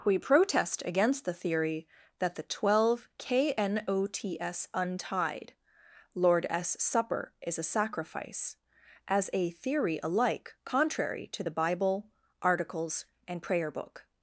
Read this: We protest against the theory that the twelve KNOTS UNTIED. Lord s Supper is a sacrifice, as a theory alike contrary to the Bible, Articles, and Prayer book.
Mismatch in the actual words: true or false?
false